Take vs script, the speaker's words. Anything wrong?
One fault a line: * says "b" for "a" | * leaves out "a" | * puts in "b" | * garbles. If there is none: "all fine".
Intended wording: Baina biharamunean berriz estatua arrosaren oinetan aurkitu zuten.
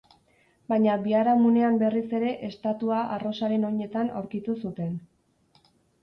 * puts in "ere"